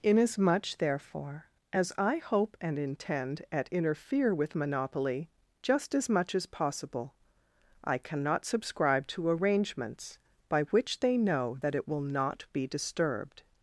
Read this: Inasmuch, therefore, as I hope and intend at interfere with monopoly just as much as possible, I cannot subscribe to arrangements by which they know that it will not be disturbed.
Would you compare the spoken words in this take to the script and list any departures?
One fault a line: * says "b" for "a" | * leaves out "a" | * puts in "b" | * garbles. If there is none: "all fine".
all fine